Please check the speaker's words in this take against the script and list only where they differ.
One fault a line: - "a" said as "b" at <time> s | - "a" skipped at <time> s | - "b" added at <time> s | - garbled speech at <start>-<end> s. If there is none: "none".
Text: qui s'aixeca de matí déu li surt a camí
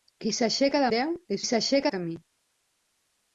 - "matí" skipped at 0.9 s
- "surt" said as "s'aixeca" at 1.5 s